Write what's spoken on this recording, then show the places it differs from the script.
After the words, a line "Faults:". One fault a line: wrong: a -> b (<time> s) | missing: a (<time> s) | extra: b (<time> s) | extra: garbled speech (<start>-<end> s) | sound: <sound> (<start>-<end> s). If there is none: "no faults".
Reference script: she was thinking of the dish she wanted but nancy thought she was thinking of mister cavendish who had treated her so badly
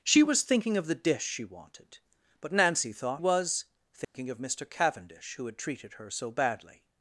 she was thinking of the dish she wanted but nancy thought was thinking of mister cavendish who had treated her so badly
Faults:
missing: she (3.2 s)
sound: dropout (4.0-4.1 s)